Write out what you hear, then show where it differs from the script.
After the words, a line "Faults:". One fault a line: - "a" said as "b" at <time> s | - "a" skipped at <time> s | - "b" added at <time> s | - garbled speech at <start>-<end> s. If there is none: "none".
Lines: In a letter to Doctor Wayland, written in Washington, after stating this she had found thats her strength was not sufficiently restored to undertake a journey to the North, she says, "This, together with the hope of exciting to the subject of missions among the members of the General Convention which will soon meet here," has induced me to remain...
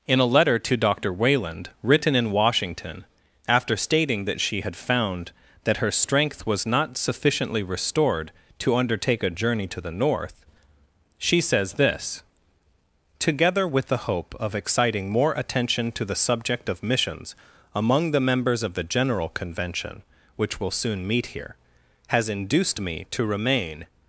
In a letter to Doctor Wayland, written in Washington, after stating that she had found that her strength was not sufficiently restored to undertake a journey to the North, she says, "This, together with the hope of exciting more attention to the subject of missions among the members of the General Convention which will soon meet here," has induced me to remain...
Faults:
- "this" said as "that" at 4.2 s
- "thats" said as "that" at 5.7 s
- "more attention" added at 15.1 s